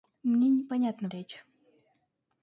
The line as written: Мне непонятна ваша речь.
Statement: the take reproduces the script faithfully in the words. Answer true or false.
false